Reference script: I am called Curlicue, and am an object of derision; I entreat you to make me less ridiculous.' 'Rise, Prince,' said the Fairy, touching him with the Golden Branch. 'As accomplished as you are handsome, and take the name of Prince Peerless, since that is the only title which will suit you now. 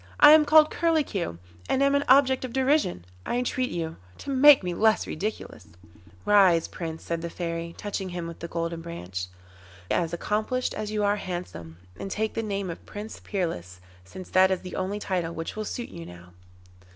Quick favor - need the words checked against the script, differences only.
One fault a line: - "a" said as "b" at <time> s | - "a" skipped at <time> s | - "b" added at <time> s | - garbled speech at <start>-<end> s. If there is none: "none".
none